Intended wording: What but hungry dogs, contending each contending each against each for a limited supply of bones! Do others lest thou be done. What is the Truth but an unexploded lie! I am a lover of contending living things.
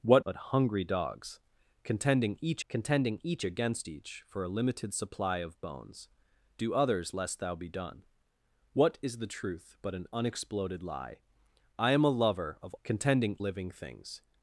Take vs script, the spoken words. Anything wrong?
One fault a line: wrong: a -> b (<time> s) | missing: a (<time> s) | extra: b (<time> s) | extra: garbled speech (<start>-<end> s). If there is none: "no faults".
no faults